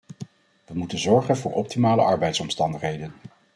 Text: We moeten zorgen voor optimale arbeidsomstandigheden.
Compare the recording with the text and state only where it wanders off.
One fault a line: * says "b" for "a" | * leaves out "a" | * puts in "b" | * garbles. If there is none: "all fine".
all fine